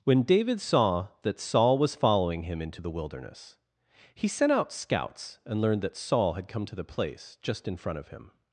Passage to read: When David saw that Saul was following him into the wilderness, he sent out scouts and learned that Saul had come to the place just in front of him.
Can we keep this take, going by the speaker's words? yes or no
yes